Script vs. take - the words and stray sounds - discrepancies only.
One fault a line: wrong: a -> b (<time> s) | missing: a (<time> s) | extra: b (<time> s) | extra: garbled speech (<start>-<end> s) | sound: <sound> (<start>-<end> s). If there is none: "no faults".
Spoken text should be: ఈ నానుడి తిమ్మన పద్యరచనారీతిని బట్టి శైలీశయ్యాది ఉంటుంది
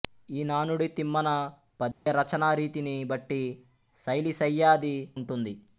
sound: dropout (1.9-2.1 s)